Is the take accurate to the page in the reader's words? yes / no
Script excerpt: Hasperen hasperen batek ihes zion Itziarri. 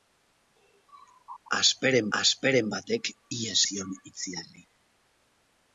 yes